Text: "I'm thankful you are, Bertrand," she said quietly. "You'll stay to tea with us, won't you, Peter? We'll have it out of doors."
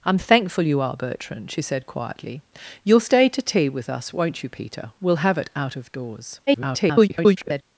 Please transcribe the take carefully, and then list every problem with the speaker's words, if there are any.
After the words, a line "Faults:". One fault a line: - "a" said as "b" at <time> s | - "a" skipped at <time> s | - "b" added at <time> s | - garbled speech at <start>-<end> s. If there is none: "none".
"I'm thankful you are, Bertrand," she said quietly. "You'll stay to tea with us, won't you, Peter? We'll have it out of doors." [garbled]
Faults:
- garbled speech at 6.5-7.6 s